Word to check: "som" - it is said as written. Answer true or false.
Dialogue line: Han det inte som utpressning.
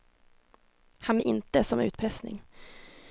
true